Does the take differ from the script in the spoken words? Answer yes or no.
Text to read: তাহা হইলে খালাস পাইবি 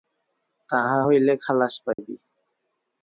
no